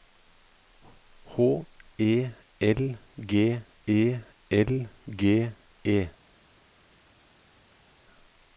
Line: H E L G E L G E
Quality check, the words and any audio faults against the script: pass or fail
pass